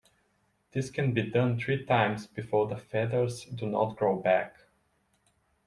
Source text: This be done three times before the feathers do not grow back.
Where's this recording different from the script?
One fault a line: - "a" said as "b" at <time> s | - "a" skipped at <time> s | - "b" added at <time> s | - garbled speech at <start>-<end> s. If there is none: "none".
- "can" added at 0.9 s